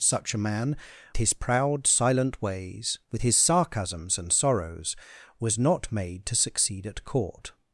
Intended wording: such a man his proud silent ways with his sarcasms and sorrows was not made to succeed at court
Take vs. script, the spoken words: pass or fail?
pass